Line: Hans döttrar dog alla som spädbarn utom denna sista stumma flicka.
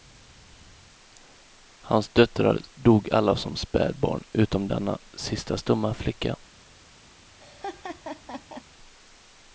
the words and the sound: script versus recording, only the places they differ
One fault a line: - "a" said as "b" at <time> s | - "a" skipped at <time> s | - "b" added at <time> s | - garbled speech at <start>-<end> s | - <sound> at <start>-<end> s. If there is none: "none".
- laugh at 7.4-8.6 s